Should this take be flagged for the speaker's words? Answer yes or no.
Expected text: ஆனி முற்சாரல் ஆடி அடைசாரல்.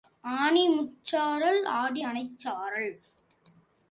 no